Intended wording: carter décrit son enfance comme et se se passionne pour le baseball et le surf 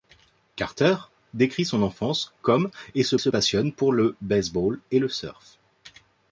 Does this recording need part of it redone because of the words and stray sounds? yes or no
no